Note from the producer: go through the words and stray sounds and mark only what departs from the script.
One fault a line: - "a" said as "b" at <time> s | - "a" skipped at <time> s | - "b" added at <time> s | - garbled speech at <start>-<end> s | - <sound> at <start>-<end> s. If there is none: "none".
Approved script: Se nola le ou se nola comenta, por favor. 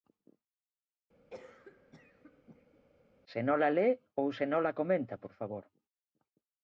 - cough at 1.3-2.8 s